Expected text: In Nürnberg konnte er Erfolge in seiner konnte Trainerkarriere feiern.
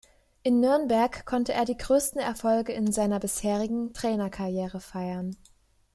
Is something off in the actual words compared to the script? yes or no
yes